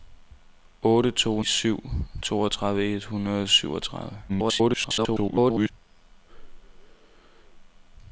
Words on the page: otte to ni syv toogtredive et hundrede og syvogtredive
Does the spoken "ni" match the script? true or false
false